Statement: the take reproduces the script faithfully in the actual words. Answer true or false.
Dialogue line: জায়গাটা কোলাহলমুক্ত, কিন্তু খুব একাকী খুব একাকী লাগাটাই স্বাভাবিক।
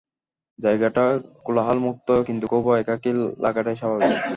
false